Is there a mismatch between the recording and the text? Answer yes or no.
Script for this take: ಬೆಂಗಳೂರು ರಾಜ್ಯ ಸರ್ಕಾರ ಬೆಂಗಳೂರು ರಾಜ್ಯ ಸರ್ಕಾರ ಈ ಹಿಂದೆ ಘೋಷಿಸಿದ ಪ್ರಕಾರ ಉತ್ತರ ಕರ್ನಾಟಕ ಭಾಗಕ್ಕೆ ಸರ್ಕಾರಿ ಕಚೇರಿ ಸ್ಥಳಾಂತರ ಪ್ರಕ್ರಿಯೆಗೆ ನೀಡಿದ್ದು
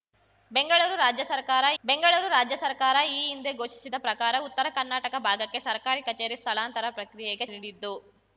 no